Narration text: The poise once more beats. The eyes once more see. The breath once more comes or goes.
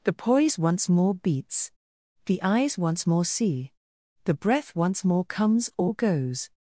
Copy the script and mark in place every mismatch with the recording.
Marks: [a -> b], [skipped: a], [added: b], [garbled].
The poise once more beats. The eyes once more see. The breath once more comes or goes.